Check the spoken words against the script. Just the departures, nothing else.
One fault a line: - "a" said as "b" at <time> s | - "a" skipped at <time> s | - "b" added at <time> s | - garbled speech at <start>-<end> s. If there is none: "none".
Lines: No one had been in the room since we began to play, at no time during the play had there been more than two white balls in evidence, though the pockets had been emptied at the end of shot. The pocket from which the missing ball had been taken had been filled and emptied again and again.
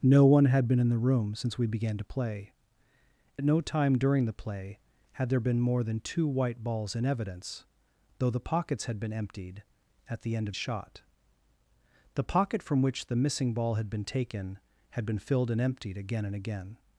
none